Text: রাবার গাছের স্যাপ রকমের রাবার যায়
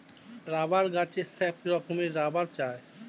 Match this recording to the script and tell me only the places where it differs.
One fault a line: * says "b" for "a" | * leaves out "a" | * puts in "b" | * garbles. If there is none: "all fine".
all fine